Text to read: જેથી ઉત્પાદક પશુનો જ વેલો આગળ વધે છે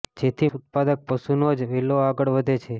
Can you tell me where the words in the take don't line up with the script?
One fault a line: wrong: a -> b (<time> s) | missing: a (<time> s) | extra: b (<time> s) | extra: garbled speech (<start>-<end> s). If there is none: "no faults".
no faults